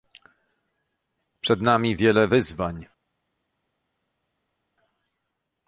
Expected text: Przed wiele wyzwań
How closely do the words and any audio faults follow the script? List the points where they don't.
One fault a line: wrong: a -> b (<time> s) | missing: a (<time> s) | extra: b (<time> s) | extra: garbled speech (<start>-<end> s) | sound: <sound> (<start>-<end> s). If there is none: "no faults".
extra: nami (1.6 s)